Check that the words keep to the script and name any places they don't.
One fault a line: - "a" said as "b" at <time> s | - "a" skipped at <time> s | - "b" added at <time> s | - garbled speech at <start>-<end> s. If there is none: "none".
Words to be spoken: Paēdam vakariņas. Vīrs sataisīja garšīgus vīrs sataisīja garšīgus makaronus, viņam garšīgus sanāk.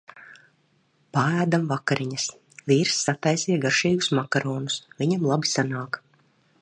- "vīrs sataisīja garšīgus" skipped at 4.1 s
- "garšīgus" said as "labi" at 5.3 s